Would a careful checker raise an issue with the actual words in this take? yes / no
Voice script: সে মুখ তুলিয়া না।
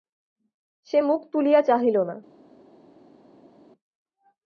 yes